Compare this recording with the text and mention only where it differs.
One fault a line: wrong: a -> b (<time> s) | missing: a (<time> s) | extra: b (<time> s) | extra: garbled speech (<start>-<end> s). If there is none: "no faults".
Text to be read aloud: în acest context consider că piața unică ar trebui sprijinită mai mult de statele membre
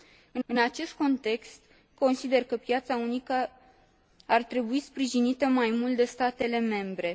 extra: în (0.4 s)